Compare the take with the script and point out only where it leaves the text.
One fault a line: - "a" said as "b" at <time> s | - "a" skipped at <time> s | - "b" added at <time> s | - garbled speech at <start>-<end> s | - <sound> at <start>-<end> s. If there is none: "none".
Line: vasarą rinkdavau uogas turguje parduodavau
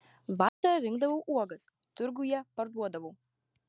- dropout at 0.5-0.6 s